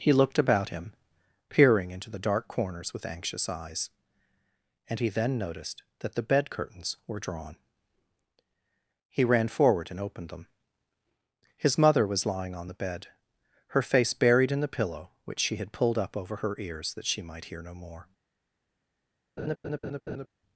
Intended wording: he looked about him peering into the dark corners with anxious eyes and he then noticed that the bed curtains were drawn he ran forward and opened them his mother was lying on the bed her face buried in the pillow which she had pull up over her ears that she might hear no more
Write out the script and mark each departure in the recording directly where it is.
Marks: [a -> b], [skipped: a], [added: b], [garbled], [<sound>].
he looked about him peering into the dark corners with anxious eyes and he then noticed that the bed curtains were drawn he ran forward and opened them his mother was lying on the bed her face buried in the pillow which she had [pull -> pulled] up over her ears that she might hear no more [laugh]